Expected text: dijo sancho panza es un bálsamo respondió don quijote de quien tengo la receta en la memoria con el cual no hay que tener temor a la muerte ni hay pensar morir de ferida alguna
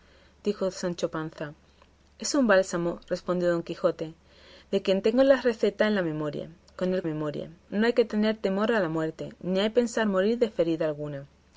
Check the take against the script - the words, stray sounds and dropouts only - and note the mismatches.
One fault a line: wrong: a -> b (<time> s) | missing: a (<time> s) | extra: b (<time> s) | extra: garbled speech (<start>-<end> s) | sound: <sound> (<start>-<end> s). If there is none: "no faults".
wrong: cual -> memoria (7.0 s)